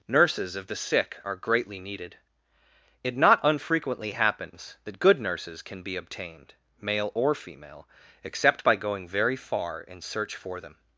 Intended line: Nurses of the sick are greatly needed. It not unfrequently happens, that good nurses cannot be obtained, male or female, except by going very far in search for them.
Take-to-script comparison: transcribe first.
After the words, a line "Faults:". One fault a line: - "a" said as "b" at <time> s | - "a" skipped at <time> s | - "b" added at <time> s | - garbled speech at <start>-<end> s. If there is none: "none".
Nurses of the sick are greatly needed. It not unfrequently happens, that good nurses can be obtained, male or female, except by going very far in search for them.
Faults:
- "cannot" said as "can" at 5.6 s